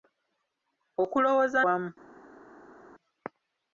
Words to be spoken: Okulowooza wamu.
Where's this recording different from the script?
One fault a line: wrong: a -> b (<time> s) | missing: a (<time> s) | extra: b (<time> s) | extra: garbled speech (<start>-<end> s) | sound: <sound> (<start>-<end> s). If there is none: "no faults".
no faults